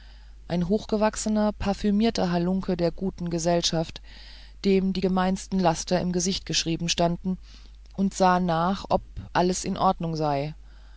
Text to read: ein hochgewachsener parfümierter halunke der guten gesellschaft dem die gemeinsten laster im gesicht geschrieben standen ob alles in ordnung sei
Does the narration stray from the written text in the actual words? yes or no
yes